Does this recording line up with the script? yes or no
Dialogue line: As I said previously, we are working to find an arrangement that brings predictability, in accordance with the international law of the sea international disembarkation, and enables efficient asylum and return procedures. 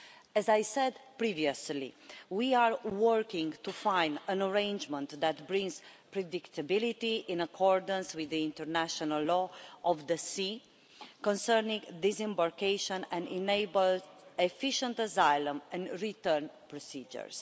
no